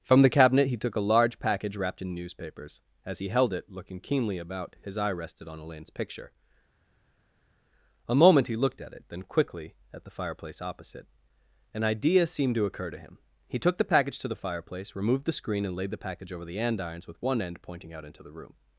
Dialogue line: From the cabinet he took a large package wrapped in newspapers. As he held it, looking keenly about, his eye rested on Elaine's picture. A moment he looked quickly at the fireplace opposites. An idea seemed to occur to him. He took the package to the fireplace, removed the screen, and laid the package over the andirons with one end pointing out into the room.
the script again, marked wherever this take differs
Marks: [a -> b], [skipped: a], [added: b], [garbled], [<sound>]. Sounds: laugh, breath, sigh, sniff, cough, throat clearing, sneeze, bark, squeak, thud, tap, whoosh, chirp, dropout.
From the cabinet he took a large package wrapped in newspapers. As he held it, looking keenly about, his eye rested on Elaine's picture. A moment he looked [added: at it then] quickly at the fireplace [opposites. -> opposite] An idea seemed to occur to him. He took the package to the fireplace, removed the screen, and laid the package over the andirons with one end pointing out into the room.